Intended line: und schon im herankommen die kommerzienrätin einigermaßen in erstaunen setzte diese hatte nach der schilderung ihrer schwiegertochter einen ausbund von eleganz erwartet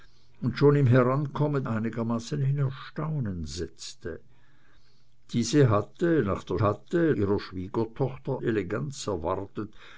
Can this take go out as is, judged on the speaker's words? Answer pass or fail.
fail